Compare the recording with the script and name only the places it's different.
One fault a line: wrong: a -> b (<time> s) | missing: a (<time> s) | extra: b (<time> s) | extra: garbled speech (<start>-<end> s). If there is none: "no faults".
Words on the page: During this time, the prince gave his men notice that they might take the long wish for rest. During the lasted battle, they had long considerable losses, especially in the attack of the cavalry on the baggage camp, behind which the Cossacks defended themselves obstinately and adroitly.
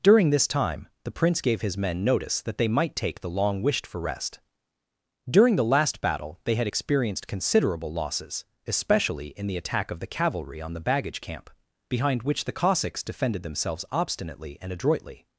wrong: wish -> wished (3.6 s)
wrong: lasted -> last (5.6 s)
wrong: long -> experienced (6.6 s)